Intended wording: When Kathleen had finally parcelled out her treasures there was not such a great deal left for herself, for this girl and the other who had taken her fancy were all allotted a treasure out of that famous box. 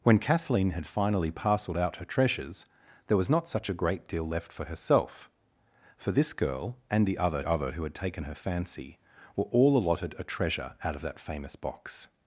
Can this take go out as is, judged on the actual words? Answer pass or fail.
fail